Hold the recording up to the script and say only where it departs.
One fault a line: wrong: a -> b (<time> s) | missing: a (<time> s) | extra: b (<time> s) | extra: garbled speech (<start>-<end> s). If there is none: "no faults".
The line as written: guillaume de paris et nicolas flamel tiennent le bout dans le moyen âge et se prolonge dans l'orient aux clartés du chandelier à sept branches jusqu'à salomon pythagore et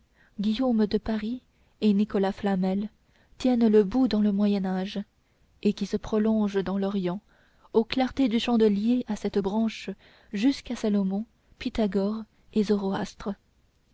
extra: qui (5.7 s)